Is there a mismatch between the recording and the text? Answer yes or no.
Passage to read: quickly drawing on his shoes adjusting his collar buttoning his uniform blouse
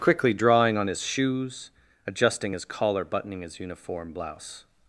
no